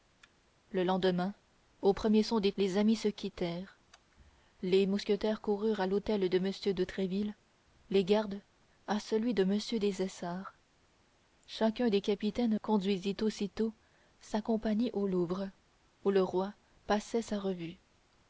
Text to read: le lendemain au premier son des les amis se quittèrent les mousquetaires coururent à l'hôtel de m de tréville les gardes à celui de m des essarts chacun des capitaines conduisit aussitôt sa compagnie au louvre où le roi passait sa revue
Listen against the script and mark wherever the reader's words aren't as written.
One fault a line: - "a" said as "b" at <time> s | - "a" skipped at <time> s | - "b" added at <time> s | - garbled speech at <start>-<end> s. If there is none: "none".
none